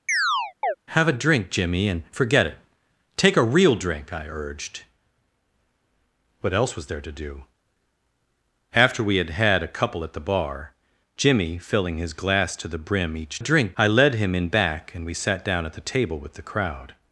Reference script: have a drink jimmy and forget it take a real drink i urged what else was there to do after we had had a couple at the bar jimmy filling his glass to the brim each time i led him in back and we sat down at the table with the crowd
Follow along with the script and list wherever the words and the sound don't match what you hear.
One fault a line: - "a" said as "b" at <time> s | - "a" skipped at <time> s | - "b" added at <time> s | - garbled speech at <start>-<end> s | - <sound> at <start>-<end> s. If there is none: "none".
- chirp at 0.1-0.8 s
- "time" said as "drink" at 13.4 s